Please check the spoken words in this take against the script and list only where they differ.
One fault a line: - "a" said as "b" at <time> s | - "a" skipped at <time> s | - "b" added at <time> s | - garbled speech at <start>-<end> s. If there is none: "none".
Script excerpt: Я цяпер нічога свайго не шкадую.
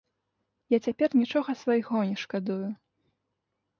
none